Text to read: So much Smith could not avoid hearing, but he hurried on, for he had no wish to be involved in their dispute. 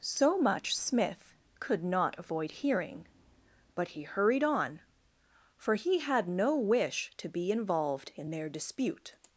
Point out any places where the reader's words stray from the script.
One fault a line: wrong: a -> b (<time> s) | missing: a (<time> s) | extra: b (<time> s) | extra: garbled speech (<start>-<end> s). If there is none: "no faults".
no faults